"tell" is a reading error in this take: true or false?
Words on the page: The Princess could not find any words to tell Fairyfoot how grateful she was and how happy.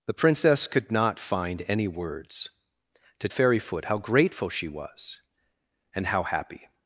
true